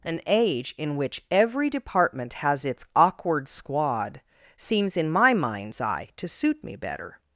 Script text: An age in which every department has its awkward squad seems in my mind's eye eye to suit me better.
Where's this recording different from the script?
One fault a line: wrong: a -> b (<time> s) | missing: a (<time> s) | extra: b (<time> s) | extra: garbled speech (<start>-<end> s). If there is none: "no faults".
missing: eye (6.1 s)